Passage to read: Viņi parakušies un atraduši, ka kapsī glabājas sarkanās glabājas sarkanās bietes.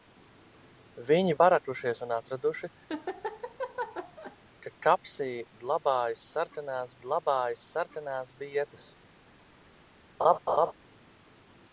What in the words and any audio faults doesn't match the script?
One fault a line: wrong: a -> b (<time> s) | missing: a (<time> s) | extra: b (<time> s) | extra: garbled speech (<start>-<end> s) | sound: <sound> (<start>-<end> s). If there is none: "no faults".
sound: laugh (2.9-4.4 s)
sound: laugh (10.2-10.7 s)